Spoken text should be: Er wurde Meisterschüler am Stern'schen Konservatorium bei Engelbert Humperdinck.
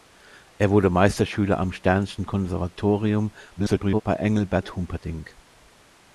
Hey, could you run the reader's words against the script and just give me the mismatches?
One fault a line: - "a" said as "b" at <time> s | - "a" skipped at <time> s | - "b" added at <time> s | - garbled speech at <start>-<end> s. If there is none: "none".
- garbled speech at 3.6-4.0 s